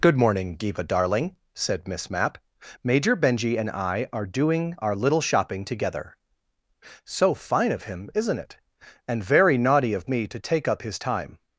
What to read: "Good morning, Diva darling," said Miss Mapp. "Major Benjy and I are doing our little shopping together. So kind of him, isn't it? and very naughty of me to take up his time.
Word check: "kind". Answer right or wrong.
wrong